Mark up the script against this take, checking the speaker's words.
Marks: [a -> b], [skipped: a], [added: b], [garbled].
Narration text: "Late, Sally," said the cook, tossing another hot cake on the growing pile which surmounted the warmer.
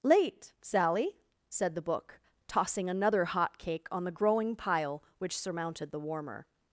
"Late, Sally," said the [cook, -> book] tossing another hot cake on the growing pile which surmounted the warmer.